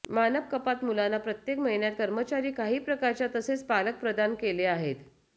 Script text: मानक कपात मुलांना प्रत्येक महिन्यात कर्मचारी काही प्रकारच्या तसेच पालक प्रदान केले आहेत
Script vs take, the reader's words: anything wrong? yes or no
no